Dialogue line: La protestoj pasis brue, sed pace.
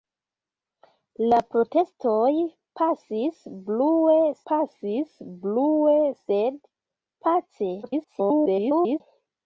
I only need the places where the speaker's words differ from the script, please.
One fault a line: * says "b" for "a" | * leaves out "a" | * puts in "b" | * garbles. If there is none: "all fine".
* puts in "pasis brue"
* garbles